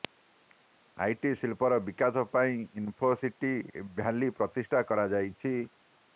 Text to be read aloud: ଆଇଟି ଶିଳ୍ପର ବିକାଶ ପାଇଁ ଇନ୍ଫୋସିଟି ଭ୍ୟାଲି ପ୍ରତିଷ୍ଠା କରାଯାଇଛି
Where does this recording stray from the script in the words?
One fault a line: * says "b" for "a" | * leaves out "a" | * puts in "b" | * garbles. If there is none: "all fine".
all fine